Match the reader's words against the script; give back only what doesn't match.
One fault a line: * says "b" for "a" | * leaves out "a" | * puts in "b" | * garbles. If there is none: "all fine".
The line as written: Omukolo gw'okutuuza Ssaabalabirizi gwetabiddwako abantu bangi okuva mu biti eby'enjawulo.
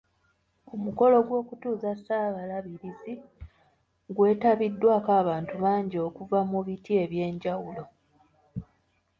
all fine